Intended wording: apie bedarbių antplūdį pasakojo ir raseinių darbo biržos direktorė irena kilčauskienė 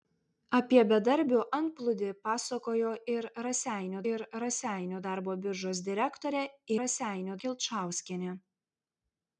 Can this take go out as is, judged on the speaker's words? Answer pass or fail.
fail